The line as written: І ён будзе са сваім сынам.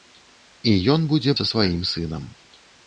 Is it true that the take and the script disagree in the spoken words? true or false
false